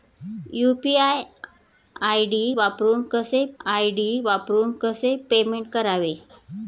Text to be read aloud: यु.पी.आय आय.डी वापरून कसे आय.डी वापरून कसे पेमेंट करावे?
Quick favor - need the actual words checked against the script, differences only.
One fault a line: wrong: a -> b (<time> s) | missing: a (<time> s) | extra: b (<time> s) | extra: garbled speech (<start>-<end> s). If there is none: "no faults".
no faults